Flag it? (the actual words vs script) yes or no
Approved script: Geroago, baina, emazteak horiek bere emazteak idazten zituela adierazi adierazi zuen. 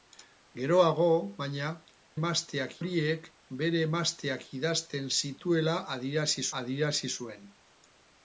no